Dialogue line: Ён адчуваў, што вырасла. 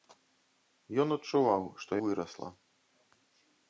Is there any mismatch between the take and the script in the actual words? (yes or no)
no